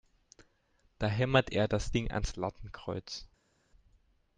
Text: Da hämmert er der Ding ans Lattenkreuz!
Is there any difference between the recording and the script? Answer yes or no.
yes